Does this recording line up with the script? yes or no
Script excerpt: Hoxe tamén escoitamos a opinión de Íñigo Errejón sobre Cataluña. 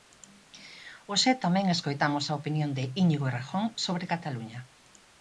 yes